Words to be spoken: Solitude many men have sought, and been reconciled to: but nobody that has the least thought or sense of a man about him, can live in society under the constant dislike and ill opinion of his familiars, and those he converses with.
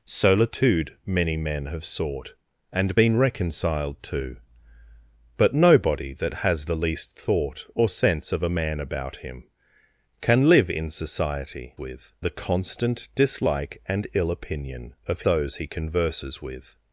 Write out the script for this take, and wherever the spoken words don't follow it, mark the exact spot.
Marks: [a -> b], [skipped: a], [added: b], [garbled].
Solitude many men have sought, and been reconciled to: but nobody that has the least thought or sense of a man about him, can live in society [under -> with] the constant dislike and ill opinion of [skipped: his familiars, and] those he converses with.